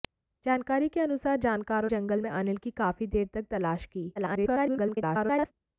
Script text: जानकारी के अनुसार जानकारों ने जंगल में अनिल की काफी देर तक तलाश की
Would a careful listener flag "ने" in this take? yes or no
yes